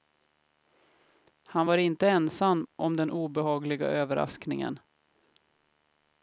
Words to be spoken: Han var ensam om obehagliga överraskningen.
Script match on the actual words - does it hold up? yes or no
no